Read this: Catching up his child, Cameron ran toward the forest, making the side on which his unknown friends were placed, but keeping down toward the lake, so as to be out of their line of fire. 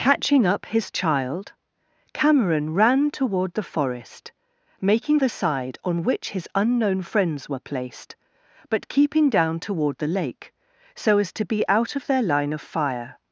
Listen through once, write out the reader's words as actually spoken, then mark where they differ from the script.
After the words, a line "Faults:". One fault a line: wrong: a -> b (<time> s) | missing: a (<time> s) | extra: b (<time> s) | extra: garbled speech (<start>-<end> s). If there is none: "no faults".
Catching up his child, Cameron ran toward the forest, making the side on which his unknown friends were placed, but keeping down toward the lake, so as to be out of their line of fire.
Faults:
no faults